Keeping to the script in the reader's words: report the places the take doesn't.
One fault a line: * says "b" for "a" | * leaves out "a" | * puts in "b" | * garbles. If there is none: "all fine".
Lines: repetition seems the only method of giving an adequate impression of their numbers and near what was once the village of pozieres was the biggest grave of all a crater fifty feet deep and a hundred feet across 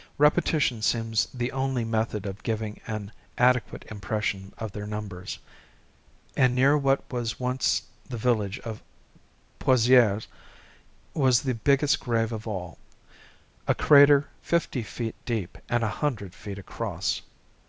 all fine